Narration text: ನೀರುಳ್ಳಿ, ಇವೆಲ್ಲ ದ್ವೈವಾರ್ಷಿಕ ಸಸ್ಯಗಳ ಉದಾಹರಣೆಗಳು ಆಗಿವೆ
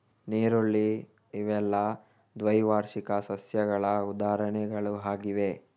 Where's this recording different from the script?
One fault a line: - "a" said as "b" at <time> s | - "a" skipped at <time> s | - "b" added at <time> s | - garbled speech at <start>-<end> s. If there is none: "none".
none